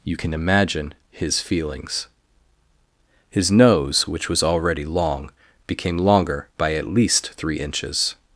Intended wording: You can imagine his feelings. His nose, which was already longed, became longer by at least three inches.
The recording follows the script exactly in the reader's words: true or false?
false